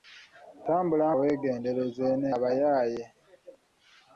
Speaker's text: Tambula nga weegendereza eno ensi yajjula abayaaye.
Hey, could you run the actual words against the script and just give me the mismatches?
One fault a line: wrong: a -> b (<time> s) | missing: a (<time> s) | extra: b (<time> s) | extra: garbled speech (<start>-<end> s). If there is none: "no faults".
missing: nga (1.1 s)
missing: ensi yajjula (2.3 s)